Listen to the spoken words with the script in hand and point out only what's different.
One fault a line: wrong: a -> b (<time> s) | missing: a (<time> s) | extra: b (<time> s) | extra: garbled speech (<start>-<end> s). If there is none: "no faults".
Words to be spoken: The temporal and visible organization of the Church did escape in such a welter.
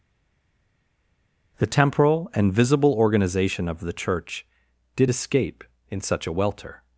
no faults